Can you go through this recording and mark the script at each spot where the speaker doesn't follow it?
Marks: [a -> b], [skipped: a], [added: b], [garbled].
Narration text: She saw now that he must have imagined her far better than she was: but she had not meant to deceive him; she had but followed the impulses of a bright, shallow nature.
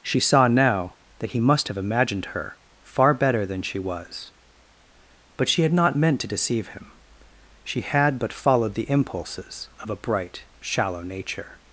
She saw now that he must have imagined her far better than she was: but she had not meant to deceive him; she had but followed the impulses of a bright, shallow nature.